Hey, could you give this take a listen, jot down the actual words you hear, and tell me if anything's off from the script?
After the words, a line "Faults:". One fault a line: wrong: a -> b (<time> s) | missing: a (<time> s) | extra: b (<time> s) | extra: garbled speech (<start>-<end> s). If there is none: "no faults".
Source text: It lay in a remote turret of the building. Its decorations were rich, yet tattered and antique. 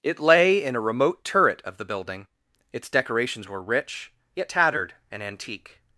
It lay in a remote turret of the building. Its decorations were rich, yet tattered and antique.
Faults:
no faults